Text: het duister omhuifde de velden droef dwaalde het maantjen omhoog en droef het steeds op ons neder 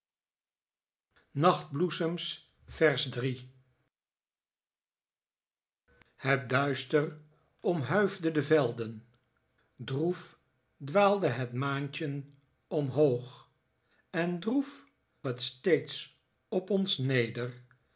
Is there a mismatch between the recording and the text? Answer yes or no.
no